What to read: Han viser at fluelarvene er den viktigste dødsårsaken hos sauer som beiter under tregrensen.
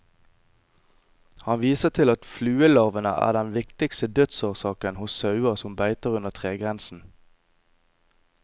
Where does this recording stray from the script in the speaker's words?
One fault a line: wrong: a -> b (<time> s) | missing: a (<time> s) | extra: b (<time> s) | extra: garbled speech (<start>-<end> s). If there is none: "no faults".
extra: til (1.9 s)